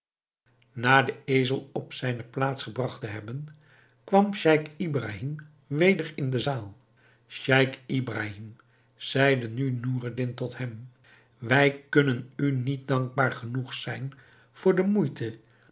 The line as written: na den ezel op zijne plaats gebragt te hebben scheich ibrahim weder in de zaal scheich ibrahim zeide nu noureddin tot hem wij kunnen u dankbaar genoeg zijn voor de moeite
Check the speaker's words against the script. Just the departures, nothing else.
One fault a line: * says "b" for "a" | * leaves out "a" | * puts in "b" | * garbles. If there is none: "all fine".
* puts in "kwam"
* puts in "niet"